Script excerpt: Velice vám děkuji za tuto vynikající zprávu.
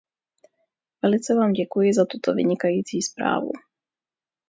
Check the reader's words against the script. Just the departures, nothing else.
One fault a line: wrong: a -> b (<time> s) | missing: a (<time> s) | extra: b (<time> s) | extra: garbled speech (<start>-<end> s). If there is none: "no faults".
no faults